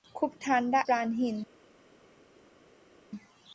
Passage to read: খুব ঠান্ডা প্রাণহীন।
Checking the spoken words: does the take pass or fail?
pass